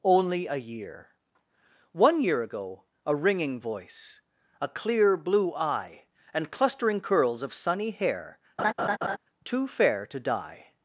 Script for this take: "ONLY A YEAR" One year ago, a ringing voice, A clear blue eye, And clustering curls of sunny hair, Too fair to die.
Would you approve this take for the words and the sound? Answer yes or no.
no